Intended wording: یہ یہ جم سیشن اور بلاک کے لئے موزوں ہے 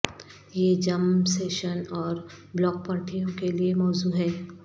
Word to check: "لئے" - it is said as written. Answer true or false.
true